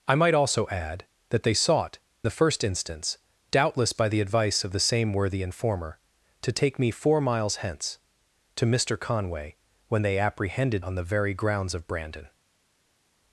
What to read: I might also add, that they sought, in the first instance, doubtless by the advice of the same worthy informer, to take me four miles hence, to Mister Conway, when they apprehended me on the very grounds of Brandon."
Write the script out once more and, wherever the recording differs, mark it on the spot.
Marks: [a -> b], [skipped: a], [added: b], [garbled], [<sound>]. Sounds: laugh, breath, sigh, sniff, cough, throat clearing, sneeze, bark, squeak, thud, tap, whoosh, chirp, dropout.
I might also add, that they sought, [skipped: in] the first instance, doubtless by the advice of the same worthy informer, to take me four miles hence, to Mister Conway, when they apprehended [skipped: me] on the very grounds of Brandon."